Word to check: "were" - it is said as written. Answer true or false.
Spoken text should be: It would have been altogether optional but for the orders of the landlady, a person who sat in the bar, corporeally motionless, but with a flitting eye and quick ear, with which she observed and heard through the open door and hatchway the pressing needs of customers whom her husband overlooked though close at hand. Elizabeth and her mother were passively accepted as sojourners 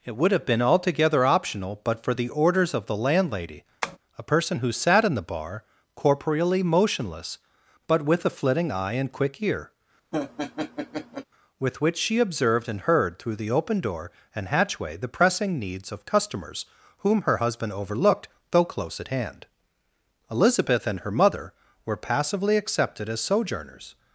true